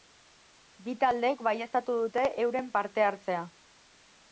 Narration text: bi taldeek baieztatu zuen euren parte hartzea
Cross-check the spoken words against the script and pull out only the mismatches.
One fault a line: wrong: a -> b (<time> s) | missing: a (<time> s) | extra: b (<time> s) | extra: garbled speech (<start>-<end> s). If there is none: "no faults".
wrong: zuen -> dute (2.0 s)